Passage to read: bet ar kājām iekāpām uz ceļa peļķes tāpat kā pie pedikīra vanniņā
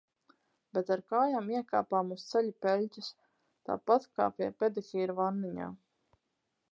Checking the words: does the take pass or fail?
pass